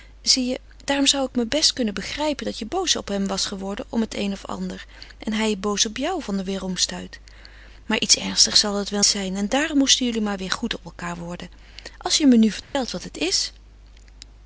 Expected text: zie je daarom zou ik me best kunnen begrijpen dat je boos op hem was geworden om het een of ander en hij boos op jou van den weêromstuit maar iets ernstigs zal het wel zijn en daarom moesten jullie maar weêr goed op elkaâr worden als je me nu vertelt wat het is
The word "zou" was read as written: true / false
true